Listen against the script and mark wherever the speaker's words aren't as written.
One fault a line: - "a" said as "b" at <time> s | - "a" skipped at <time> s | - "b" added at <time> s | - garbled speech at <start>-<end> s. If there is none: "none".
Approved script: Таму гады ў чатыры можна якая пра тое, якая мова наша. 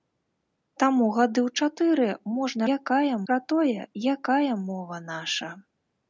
none